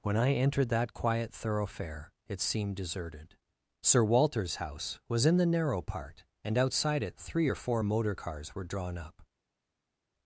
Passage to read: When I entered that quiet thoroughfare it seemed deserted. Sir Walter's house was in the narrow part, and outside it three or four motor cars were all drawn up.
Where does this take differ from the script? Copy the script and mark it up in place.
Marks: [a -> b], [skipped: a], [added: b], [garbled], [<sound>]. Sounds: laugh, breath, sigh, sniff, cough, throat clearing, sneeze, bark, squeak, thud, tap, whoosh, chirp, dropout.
When I entered that quiet thoroughfare it seemed deserted. Sir Walter's house was in the narrow part, and outside it three or four motor cars were [skipped: all] drawn up.